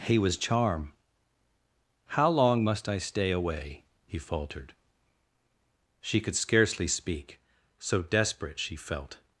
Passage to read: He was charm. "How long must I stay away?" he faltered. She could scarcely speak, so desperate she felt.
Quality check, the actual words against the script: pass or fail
pass